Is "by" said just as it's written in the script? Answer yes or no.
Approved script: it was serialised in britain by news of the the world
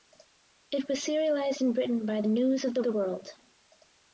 yes